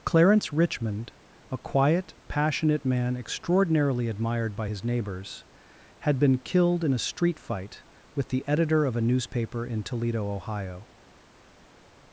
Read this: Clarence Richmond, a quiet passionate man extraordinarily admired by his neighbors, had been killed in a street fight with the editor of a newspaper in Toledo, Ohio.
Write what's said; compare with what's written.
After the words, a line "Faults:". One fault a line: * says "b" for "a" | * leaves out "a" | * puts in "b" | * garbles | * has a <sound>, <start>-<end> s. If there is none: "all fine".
Clarence Richmond, a quiet passionate man extraordinarily admired by his neighbors, had been killed in a street fight with the editor of a newspaper in Toledo, Ohio.
Faults:
all fine